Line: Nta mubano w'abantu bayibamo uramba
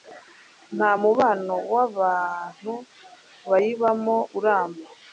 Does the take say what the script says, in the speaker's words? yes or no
yes